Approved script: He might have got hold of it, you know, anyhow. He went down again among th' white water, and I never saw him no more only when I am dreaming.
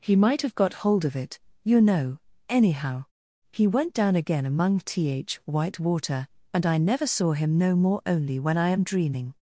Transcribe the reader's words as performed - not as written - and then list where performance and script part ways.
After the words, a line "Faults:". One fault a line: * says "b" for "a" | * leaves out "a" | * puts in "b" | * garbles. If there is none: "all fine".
He might have got hold of it, you know, anyhow. He went down again among th' white water, and I never saw him no more only when I am dreaming.
Faults:
all fine